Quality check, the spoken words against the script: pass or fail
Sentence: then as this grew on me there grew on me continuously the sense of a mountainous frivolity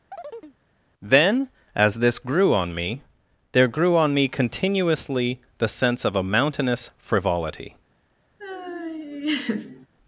pass